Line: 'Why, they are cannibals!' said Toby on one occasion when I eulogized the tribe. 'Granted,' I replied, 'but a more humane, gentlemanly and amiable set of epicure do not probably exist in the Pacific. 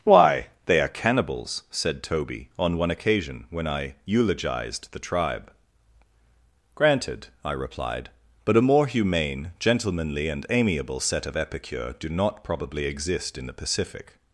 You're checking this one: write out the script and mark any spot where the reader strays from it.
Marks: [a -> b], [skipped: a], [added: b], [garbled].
'Why, they are cannibals!' said Toby on one occasion when I eulogized the tribe. 'Granted,' I replied, 'but a more humane, gentlemanly and amiable set of epicure do not probably exist in the Pacific.